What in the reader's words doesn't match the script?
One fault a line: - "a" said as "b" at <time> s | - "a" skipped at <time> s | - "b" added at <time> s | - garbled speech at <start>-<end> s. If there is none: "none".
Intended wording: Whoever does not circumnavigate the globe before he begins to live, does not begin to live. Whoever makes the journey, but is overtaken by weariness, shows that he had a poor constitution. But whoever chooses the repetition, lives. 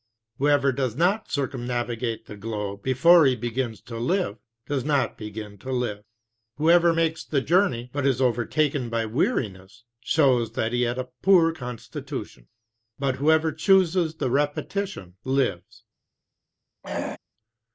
none